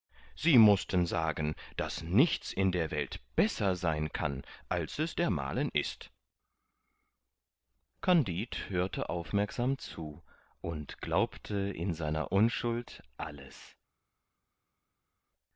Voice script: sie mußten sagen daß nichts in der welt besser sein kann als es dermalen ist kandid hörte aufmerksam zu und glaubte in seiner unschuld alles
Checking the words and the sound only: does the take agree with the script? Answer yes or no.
yes